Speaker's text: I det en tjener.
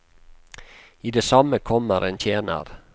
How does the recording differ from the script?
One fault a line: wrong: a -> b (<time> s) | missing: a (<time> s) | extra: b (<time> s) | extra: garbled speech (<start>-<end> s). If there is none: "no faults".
extra: samme kommer (1.2 s)